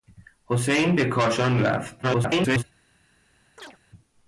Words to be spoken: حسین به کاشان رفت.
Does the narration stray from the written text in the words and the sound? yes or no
yes